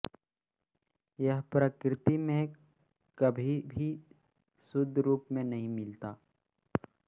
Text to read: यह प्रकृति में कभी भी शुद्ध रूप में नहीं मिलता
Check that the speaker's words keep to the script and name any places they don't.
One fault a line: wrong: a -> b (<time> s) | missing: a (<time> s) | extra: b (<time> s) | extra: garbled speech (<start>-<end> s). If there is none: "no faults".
no faults